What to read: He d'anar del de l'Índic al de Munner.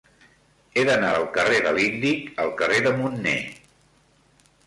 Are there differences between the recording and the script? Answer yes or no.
yes